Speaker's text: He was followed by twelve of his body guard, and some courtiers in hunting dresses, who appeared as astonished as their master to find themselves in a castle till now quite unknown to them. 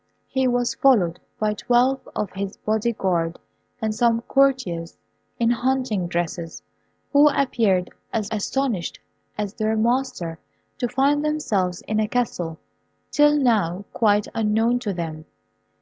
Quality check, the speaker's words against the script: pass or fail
pass